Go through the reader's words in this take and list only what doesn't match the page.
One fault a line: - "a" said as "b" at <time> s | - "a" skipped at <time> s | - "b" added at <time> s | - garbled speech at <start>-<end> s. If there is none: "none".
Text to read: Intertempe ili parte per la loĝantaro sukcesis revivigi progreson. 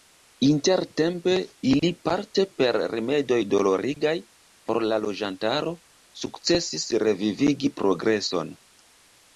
- "rimedoj dolorigaj por" added at 3.0 s